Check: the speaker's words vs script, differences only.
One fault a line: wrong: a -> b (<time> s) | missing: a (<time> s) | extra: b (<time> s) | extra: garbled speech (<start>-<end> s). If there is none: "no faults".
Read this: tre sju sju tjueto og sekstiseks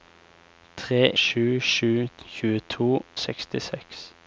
no faults